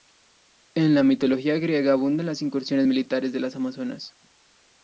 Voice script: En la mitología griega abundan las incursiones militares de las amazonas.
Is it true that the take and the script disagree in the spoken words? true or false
false